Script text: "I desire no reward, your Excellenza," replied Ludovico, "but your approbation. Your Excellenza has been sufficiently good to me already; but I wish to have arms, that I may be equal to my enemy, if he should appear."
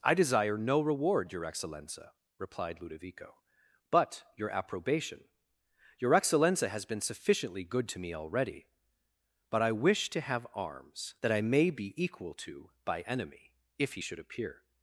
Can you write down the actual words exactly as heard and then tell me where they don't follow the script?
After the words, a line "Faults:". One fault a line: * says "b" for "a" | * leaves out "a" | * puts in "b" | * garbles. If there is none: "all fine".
"I desire no reward, your Excellenza," replied Ludovico, "but your approbation. Your Excellenza has been sufficiently good to me already; but I wish to have arms, that I may be equal to by enemy, if he should appear."
Faults:
* says "by" for "my"